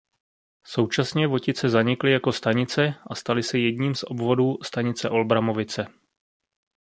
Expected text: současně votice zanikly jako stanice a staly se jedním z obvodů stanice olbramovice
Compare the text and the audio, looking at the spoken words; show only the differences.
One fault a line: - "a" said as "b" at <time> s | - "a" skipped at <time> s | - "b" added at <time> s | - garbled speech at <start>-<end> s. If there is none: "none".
none